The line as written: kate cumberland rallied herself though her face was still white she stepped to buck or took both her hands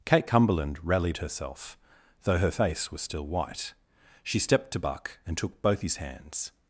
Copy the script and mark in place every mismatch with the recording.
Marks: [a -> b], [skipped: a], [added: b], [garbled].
kate cumberland rallied herself though her face was still white she stepped to buck [or -> and] took both [her -> his] hands